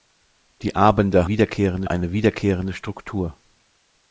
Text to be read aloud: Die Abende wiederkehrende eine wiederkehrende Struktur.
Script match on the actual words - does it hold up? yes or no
yes